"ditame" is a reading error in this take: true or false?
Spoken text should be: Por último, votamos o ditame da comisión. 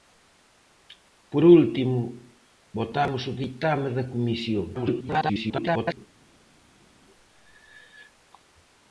false